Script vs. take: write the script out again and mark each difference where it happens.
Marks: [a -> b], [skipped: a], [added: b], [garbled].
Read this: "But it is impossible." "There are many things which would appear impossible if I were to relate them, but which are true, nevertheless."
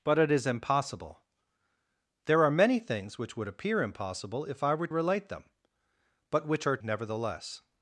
"But it is impossible." "There are many things which would appear impossible if I were [skipped: to] relate them, but which are [skipped: true,] nevertheless."